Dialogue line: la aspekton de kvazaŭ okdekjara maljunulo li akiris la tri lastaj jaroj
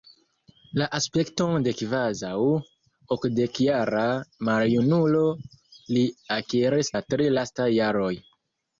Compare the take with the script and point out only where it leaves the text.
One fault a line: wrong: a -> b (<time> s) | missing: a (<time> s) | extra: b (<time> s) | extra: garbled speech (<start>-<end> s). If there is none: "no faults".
no faults